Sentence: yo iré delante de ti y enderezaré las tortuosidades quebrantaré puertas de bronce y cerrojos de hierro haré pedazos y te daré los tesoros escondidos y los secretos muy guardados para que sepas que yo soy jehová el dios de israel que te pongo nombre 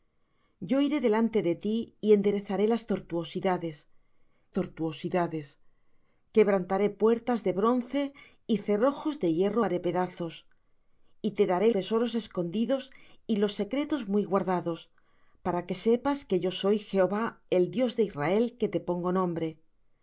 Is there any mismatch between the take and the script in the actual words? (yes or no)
yes